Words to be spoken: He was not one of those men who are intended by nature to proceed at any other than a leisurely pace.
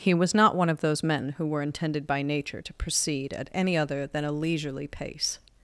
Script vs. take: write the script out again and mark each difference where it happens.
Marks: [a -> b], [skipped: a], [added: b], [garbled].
He was not one of those men who [are -> were] intended by nature to proceed at any other than a leisurely pace.